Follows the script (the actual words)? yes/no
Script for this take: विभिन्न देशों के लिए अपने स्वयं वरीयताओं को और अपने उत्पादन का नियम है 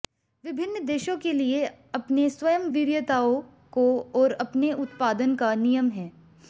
yes